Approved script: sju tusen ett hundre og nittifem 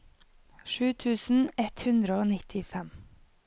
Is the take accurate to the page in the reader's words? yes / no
yes